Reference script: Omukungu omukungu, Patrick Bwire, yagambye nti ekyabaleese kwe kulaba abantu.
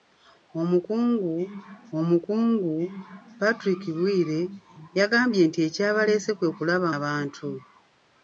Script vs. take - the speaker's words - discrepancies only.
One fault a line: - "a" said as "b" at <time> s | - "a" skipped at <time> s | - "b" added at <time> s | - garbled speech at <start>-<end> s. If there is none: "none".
none